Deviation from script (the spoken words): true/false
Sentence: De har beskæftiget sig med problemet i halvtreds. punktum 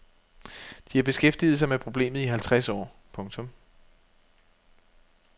true